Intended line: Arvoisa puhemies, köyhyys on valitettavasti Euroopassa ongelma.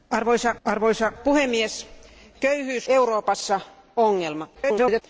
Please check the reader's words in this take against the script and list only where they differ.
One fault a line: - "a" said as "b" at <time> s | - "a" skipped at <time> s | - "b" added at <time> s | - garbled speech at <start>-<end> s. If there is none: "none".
- "arvoisa" added at 0.6 s
- "on valitettavasti" skipped at 2.9 s
- garbled speech at 4.5-5.0 s